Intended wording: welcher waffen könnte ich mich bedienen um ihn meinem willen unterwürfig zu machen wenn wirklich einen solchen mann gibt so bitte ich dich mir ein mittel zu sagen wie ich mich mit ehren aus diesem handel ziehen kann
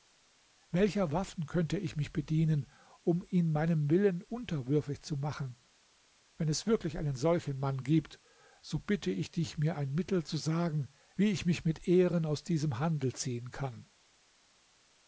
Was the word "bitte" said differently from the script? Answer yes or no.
no